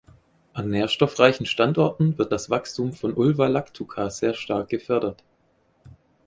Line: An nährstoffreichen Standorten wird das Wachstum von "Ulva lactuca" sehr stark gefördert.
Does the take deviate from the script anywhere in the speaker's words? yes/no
no